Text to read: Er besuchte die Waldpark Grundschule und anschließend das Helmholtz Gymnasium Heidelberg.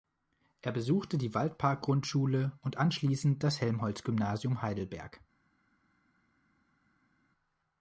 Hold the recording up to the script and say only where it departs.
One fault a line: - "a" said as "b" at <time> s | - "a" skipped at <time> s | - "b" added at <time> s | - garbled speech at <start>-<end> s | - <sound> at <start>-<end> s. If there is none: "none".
none